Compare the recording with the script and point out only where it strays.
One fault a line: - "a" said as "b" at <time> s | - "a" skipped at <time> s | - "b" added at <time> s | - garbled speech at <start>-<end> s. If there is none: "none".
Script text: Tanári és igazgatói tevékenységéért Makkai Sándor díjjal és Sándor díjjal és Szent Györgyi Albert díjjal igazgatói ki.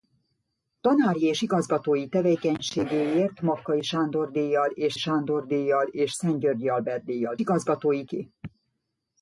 none